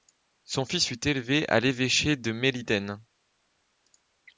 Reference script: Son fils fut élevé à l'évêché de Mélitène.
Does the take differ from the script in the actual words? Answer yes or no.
no